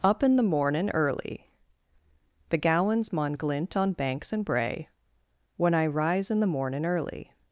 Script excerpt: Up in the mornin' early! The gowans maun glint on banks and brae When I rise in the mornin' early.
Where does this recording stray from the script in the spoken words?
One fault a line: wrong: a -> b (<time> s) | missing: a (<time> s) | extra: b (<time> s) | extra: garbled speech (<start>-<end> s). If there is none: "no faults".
no faults